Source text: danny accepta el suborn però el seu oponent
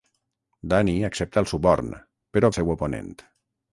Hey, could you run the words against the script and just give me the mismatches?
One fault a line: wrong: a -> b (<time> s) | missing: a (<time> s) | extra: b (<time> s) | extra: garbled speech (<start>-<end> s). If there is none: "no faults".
no faults